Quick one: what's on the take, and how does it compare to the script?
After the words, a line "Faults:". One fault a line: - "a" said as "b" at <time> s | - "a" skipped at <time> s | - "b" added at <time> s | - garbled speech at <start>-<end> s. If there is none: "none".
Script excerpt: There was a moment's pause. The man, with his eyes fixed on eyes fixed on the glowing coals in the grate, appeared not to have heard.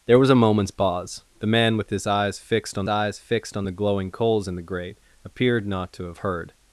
There was a moment's pause. The man, with his eyes fixed on eyes fixed on the glowing coals in the grate, appeared not to have heard.
Faults:
none